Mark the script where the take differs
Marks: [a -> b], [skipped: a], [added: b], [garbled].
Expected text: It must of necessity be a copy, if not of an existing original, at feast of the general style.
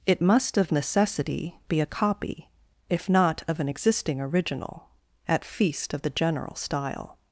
It must of necessity be a copy, if not of an existing original, at feast of the general style.